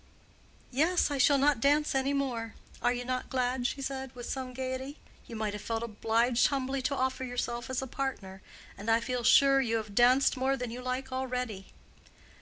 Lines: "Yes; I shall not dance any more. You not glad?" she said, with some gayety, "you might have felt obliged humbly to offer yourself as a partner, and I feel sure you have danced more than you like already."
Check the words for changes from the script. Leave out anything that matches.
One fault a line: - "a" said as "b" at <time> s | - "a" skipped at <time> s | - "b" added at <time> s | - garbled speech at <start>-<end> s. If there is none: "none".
- "Are" added at 2.8 s